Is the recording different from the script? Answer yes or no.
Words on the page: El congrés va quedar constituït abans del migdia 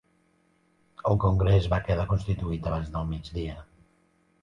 no